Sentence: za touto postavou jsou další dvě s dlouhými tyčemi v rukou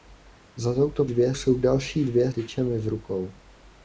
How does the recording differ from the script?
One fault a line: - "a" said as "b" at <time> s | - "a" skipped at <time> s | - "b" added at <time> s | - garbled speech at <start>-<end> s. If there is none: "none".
- "postavou" said as "dvě" at 1.0 s
- "s dlouhými" skipped at 2.3 s